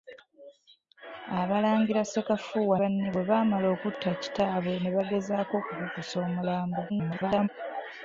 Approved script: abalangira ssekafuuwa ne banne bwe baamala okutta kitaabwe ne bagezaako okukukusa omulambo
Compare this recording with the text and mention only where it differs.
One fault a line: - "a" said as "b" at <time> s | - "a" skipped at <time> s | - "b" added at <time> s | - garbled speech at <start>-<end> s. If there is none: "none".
- "ne" skipped at 2.8 s
- garbled speech at 6.9-7.5 s